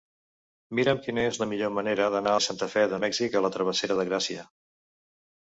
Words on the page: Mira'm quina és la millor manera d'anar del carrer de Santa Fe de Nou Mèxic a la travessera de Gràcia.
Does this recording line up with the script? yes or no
no